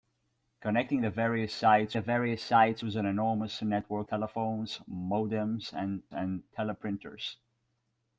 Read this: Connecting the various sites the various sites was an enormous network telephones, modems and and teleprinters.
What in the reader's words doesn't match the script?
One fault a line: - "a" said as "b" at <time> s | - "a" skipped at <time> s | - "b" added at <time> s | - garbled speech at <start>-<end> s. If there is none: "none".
none